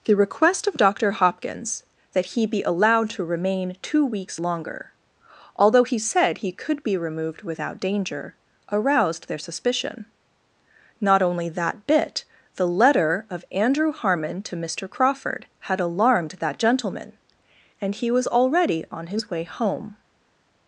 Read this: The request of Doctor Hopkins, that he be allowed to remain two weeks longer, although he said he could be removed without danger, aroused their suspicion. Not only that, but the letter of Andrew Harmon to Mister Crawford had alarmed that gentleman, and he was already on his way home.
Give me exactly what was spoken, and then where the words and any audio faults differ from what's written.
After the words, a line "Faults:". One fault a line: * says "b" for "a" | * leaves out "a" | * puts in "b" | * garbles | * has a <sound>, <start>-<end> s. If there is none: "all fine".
The request of Doctor Hopkins, that he be allowed to remain two weeks longer, although he said he could be removed without danger, aroused their suspicion. Not only that, bit the letter of Andrew Harmon to Mister Crawford had alarmed that gentleman, and he was already on his way home.
Faults:
* says "bit" for "but"